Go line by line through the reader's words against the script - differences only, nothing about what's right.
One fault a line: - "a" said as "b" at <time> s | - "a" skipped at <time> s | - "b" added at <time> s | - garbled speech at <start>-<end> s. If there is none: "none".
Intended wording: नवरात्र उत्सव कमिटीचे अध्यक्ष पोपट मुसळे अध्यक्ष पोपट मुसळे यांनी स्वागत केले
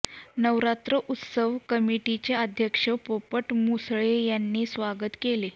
- "अध्यक्ष पोपट मुसळे" skipped at 4.2 s